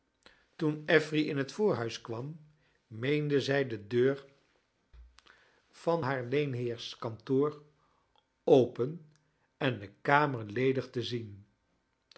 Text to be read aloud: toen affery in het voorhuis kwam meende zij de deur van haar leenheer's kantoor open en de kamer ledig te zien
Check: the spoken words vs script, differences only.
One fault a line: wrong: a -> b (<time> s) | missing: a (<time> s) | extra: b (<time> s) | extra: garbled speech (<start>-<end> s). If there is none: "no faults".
no faults